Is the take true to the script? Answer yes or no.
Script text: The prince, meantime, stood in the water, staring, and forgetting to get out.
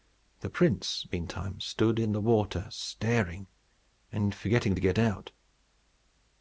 yes